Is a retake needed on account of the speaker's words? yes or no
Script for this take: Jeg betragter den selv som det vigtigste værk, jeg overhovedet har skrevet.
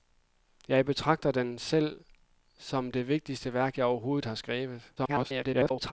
yes